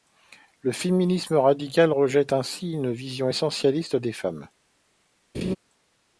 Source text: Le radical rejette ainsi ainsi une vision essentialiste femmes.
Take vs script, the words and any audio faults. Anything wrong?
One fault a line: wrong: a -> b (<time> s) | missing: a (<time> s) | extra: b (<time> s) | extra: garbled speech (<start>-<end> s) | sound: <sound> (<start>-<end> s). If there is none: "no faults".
extra: féminisme (0.7 s)
missing: ainsi (2.7 s)
extra: des (4.0 s)
sound: laugh (5.3-5.6 s)